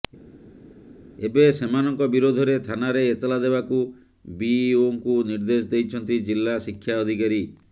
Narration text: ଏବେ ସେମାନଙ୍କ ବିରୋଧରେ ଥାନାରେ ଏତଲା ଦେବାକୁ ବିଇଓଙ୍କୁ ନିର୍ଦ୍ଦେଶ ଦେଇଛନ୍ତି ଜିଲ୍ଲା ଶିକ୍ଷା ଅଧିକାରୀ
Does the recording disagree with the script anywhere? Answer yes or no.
no